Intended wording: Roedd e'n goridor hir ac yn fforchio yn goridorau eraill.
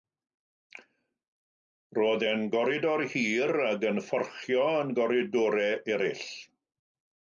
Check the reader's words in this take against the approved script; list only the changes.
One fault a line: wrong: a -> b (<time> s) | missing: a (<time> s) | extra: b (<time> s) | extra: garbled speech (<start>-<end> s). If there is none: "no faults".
no faults